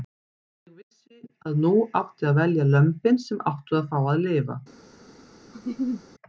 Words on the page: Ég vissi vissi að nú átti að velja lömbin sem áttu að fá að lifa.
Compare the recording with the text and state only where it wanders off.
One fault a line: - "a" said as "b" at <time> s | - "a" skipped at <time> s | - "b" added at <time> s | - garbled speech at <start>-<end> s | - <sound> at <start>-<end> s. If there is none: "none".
- "vissi" skipped at 1.2 s
- laugh at 5.5-6.0 s